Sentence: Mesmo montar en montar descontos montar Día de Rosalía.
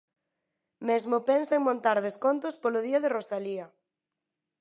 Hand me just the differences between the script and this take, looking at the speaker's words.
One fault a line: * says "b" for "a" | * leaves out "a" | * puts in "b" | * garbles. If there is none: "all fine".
* says "pensa" for "montar"
* says "polo" for "montar"